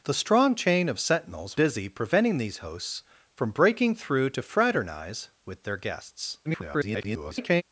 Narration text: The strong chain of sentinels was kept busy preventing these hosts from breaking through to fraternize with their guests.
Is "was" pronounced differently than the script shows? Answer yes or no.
yes